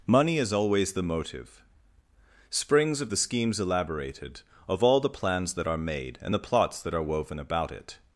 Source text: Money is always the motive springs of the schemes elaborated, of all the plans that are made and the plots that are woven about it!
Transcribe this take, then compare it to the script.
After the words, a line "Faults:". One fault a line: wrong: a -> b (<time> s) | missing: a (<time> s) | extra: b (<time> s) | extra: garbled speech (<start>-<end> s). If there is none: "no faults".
Money is always the motive springs of the schemes elaborated, of all the plans that are made and the plots that are woven about it!
Faults:
no faults